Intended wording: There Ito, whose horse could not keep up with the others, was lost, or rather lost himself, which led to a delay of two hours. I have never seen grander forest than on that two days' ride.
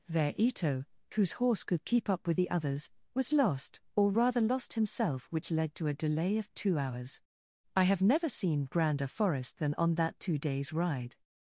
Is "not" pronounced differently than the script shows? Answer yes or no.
yes